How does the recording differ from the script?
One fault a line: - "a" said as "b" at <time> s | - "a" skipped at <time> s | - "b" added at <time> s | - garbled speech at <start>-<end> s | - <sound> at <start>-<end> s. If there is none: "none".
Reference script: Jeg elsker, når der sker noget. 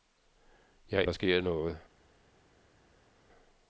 - "elsker når" skipped at 1.0 s